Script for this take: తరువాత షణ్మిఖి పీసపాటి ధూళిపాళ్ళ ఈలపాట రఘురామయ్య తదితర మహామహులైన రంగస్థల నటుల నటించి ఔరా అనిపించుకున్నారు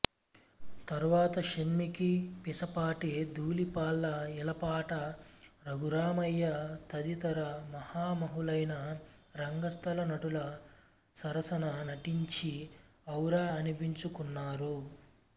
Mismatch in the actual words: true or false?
true